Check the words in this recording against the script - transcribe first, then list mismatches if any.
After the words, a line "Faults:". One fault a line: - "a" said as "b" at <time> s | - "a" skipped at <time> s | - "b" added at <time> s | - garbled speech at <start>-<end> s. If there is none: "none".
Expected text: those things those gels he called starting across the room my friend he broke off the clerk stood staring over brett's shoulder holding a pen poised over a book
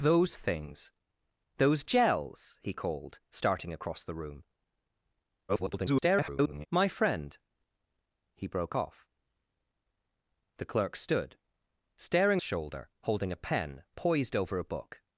those things those gels he called starting across the room [garbled] my friend he broke off the clerk stood staring shoulder holding a pen poised over a book
Faults:
- garbled speech at 5.5-6.7 s
- "over brett's" skipped at 12.4 s